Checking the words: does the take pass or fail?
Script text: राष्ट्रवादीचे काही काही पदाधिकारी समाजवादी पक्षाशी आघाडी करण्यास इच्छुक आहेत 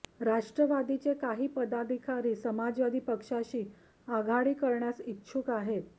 fail